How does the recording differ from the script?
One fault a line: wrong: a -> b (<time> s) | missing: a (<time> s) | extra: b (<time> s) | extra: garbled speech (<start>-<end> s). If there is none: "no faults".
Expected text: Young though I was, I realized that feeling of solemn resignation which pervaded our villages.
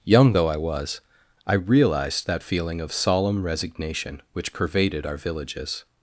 no faults